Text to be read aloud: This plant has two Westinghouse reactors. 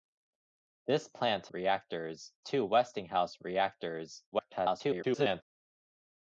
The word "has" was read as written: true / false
false